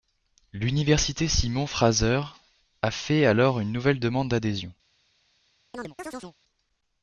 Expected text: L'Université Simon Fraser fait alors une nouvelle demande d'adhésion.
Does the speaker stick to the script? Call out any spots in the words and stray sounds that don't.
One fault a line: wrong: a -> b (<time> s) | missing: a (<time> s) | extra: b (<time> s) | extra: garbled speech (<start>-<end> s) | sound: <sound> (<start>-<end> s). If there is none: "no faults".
extra: a (2.8 s)
sound: chirp (5.7-6.4 s)